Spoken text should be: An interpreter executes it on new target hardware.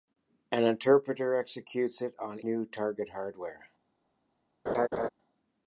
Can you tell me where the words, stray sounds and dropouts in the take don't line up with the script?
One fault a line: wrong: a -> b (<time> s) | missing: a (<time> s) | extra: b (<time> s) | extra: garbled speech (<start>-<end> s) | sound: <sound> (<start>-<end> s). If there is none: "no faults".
sound: laugh (4.7-5.1 s)